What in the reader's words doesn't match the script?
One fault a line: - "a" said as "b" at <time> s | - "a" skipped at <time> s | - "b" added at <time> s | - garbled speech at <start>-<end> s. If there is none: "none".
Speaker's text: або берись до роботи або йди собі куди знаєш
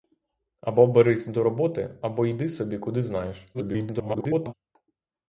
- garbled speech at 3.5-4.5 s